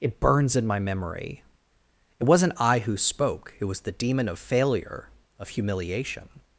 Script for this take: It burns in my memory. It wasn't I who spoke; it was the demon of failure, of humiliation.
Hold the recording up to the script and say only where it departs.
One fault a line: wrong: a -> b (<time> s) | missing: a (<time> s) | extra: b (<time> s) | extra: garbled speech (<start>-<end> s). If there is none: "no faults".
no faults